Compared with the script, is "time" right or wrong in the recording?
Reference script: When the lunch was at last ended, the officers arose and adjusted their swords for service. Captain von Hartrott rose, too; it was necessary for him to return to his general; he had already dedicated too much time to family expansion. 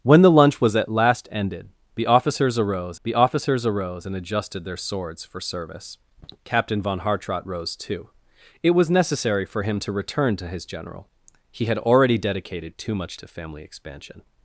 wrong